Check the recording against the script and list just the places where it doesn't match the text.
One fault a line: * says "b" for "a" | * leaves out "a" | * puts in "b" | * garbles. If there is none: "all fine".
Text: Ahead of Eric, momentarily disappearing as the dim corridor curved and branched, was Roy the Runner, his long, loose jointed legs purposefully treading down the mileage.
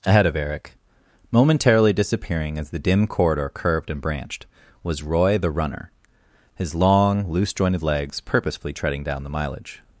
all fine